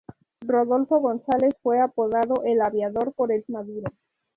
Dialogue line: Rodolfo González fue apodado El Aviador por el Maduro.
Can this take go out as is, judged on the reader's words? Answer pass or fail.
pass